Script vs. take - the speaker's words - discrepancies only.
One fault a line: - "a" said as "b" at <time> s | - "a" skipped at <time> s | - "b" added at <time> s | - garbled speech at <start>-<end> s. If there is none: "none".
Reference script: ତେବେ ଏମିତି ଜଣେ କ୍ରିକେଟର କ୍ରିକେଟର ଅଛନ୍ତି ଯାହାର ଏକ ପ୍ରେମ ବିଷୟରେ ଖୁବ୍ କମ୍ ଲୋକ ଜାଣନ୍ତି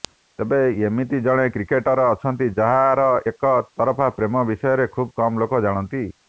- "କ୍ରିକେଟର" skipped at 2.0 s
- "ତରଫା" added at 3.7 s